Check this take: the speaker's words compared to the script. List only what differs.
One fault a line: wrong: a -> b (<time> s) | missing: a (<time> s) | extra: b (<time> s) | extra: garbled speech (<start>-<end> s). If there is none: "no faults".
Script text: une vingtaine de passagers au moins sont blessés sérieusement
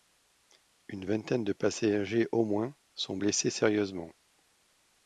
no faults